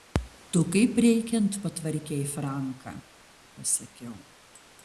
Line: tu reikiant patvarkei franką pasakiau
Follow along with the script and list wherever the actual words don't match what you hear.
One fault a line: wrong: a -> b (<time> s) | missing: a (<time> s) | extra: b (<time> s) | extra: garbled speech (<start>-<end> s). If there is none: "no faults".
extra: kaip (0.7 s)